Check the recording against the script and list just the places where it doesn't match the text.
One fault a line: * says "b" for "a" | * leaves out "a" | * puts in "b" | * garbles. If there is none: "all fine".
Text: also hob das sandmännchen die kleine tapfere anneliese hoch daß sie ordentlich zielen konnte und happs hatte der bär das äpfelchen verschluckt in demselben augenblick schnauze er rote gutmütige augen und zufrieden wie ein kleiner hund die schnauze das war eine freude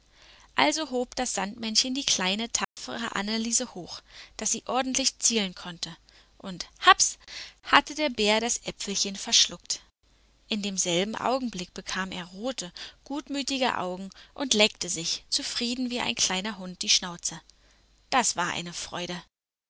* says "bekam" for "schnauze"
* puts in "leckte sich"